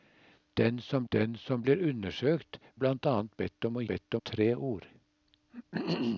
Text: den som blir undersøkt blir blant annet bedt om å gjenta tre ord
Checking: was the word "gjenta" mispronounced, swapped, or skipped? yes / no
yes